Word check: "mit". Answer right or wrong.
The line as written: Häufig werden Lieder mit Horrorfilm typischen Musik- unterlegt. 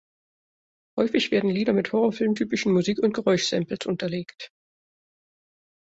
right